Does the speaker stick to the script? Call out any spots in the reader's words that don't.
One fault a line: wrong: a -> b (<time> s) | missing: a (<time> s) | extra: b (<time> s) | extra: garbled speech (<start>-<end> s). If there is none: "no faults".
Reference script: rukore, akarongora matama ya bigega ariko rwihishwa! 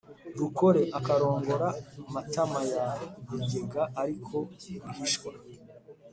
no faults